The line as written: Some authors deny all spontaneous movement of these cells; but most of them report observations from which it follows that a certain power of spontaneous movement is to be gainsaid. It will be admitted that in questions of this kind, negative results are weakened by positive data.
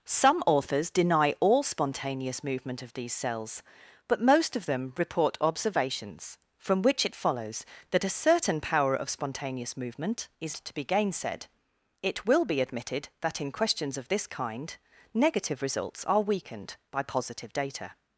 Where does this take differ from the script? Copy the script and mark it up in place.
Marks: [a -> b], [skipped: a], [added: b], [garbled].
Some authors deny all spontaneous movement of these cells; but most of them report observations from which it follows that a certain power of spontaneous movement is to be gainsaid. It will be admitted that in questions of this kind, negative results are weakened by positive data.